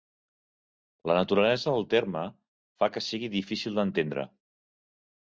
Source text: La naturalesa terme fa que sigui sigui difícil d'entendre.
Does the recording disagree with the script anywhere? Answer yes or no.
yes